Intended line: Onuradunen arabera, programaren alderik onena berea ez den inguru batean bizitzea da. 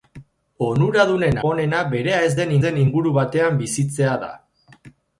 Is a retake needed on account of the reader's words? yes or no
yes